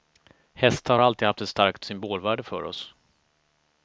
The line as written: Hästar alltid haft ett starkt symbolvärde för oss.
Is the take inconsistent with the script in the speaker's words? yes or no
no